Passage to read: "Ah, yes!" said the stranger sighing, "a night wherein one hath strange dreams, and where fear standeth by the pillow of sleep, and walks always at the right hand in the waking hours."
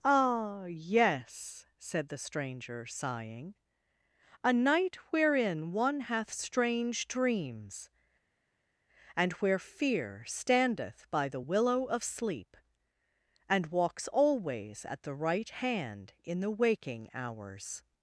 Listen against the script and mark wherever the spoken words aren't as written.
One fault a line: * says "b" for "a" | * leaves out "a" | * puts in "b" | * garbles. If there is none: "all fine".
* says "willow" for "pillow"